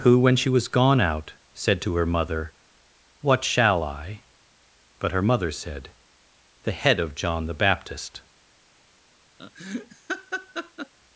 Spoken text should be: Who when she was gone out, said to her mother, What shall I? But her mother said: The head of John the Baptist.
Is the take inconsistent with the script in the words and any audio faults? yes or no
yes